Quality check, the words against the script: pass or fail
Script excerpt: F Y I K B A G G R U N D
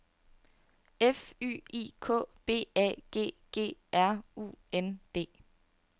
pass